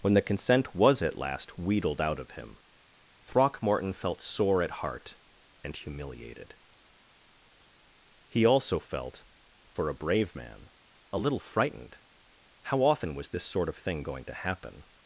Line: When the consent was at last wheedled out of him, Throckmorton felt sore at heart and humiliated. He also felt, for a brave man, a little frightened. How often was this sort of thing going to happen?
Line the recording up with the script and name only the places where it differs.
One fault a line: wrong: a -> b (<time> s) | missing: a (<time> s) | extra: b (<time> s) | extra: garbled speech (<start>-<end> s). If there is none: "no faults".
no faults